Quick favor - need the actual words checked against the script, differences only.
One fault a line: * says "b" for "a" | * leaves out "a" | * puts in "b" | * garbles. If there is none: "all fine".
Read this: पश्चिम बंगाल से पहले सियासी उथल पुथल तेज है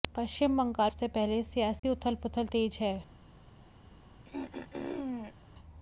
all fine